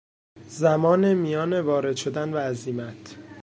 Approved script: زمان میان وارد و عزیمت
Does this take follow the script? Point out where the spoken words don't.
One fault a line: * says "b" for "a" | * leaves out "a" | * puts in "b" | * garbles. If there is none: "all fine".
* puts in "شدن"